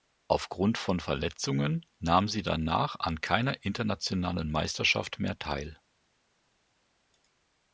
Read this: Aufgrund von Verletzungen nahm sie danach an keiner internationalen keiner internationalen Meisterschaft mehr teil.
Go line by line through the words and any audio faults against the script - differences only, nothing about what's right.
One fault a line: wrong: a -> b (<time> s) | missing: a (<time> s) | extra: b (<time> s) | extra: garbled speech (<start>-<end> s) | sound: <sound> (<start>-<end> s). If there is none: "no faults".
missing: keiner internationalen (4.5 s)